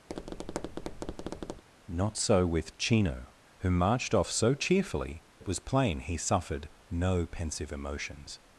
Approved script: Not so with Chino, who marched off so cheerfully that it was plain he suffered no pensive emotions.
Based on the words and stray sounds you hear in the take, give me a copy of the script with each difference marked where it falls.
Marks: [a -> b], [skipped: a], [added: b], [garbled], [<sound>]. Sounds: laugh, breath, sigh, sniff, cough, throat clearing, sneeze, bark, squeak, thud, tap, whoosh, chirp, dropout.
[tap] Not so with Chino, who marched off so cheerfully [skipped: that] it was plain he suffered no pensive emotions.